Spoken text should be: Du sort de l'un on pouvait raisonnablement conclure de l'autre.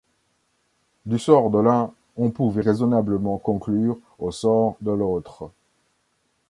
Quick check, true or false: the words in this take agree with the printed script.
false